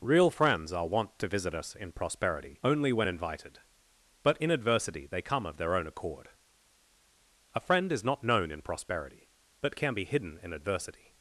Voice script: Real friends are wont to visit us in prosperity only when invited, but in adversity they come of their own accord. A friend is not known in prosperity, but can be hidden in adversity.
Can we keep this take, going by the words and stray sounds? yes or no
yes